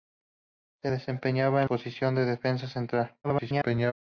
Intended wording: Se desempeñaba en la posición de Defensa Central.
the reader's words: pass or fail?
fail